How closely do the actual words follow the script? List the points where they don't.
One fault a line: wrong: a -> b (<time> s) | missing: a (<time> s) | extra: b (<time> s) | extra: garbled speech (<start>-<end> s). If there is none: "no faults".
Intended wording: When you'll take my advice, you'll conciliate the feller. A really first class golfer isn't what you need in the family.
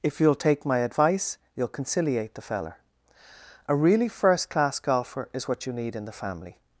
wrong: When -> If (0.0 s)
wrong: isn't -> is (5.3 s)